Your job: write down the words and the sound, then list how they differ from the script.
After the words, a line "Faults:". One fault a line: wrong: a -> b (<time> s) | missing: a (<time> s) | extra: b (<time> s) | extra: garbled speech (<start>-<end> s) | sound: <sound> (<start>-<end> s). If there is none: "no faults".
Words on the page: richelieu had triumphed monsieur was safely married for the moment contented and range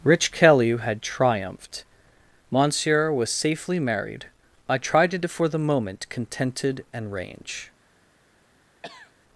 rich kelly had triumphed monsieur was safely married i tried it for the moment contented and range
Faults:
wrong: richelieu -> rich kelly (0.0 s)
extra: i tried it (4.7 s)
sound: cough (8.8-9.1 s)